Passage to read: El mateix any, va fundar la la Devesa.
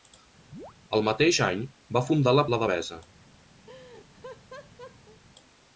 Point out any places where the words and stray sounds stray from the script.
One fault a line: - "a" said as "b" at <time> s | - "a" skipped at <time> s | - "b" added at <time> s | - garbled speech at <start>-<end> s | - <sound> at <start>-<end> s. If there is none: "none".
- chirp at 0.5-0.7 s
- laugh at 3.7-5.2 s